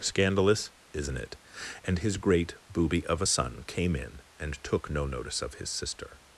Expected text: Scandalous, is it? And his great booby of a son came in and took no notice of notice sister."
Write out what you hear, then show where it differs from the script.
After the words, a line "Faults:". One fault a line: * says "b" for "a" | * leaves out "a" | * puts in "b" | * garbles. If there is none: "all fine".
Scandalous, isn't it? And his great booby of a son came in and took no notice of his sister."
Faults:
* says "isn't" for "is"
* says "his" for "notice"